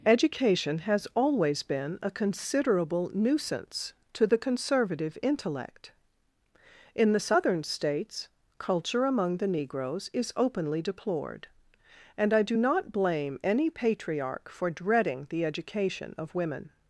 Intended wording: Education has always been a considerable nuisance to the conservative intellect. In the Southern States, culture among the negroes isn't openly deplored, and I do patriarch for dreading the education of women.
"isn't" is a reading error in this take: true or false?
true